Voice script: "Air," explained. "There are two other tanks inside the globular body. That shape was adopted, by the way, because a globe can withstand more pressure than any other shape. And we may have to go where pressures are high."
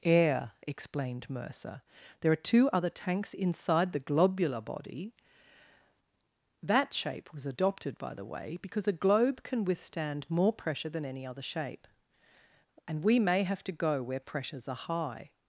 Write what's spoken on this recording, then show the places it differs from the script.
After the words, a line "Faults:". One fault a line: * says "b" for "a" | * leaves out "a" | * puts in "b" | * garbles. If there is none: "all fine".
"Air," explained Mercer. "There are two other tanks inside the globular body. That shape was adopted, by the way, because a globe can withstand more pressure than any other shape. And we may have to go where pressures are high."
Faults:
* puts in "Mercer"